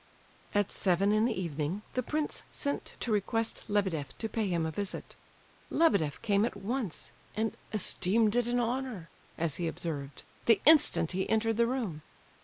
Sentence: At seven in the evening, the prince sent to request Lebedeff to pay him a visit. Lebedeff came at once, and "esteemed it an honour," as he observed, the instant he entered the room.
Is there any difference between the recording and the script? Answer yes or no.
no